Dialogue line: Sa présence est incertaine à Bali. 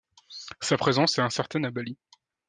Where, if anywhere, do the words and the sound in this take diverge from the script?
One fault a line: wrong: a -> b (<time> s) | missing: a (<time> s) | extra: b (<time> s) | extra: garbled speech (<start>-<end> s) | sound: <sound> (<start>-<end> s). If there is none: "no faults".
no faults